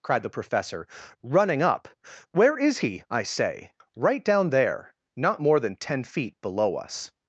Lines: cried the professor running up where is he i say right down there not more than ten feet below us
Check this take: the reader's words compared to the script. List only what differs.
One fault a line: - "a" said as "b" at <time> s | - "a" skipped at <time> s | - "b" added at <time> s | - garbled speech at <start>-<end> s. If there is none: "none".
none